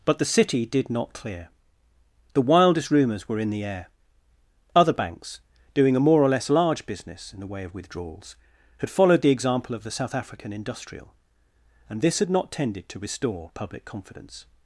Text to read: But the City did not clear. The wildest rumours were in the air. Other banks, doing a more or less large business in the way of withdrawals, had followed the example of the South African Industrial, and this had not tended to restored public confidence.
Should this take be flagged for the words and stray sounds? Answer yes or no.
yes